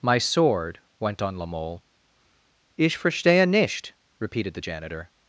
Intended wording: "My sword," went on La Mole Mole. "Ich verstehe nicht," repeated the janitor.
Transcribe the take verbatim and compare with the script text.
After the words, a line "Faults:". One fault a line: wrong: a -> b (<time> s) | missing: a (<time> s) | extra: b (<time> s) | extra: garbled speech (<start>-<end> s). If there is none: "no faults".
"My sword," went on La Mole. "Ich verstehe nicht," repeated the janitor.
Faults:
missing: Mole (1.8 s)